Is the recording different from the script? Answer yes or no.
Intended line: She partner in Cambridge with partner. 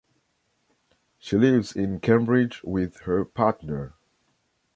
yes